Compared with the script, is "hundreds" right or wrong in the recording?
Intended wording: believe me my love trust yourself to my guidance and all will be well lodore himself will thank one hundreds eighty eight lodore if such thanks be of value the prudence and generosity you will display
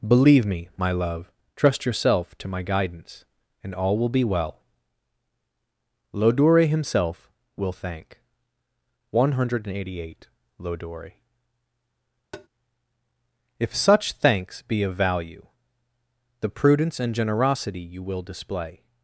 wrong